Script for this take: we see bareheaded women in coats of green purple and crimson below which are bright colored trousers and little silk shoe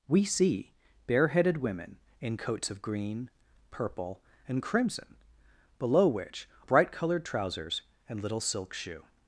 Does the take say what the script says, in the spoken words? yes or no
no